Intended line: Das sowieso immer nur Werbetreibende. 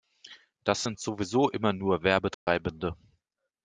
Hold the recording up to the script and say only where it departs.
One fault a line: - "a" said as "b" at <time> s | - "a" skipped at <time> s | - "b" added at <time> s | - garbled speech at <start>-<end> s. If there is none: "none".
- "sind" added at 0.8 s